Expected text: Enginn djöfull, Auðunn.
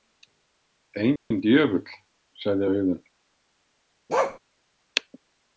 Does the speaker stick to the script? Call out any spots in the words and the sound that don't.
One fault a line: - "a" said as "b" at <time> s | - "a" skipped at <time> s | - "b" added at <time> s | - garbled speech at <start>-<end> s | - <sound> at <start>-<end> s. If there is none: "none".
- dropout at 1.2-1.3 s
- "sagði" added at 2.4 s
- bark at 4.1-4.4 s